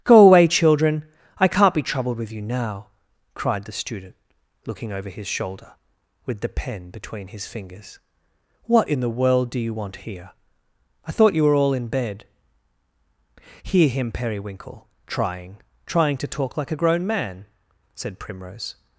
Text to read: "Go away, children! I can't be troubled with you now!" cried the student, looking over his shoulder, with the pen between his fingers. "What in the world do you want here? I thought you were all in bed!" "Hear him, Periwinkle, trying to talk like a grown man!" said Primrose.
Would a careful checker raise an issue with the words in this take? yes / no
yes